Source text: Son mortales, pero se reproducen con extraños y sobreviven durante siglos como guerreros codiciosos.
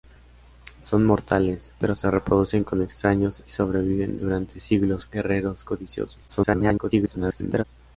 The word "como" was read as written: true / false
false